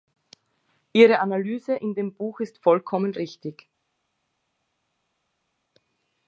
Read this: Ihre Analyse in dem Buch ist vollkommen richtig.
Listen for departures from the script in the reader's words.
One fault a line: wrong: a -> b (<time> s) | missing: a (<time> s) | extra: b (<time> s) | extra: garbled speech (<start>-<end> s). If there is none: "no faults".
no faults